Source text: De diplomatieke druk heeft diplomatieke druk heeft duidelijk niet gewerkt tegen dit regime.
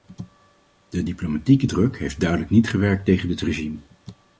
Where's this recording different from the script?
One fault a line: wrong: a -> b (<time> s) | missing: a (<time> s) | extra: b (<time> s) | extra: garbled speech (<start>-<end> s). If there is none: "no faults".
missing: diplomatieke druk heeft (2.2 s)